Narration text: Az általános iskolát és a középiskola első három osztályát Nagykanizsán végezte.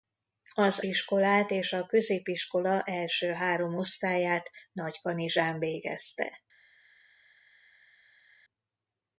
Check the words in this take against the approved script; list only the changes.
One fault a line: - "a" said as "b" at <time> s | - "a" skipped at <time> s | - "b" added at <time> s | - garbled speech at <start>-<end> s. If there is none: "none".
- "általános" skipped at 0.8 s